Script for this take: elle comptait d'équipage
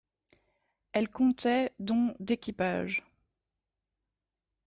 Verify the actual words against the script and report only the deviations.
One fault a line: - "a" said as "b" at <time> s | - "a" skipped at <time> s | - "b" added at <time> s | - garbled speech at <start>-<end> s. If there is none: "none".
- "dont" added at 1.8 s